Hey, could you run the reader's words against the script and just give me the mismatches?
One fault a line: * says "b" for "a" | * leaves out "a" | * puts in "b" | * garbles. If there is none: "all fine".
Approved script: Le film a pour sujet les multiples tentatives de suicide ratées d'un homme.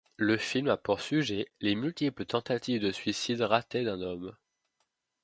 all fine